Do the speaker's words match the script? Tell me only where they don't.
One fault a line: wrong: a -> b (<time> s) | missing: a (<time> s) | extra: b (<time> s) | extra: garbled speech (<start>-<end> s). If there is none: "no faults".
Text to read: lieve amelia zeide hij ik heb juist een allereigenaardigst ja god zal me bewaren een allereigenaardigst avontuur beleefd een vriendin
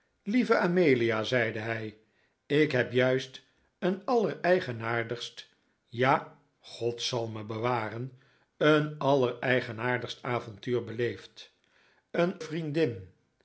no faults